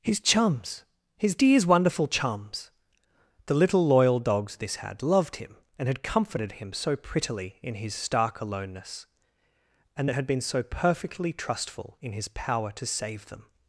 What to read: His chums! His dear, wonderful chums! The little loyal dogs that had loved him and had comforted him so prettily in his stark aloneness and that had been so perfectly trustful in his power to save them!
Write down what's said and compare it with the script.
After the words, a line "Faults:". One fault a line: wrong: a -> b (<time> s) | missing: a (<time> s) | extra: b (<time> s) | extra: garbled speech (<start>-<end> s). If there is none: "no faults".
His chums! His dears, wonderful chums! The little loyal dogs this had loved him and had comforted him so prettily in his stark aloneness and that had been so perfectly trustful in his power to save them!
Faults:
wrong: dear -> dears (1.4 s)
wrong: that -> this (4.5 s)